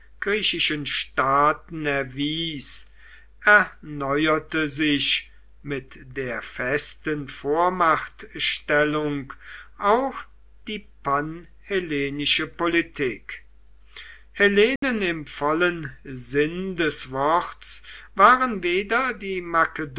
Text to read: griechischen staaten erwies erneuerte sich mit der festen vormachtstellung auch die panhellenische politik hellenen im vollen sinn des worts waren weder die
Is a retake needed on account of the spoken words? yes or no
no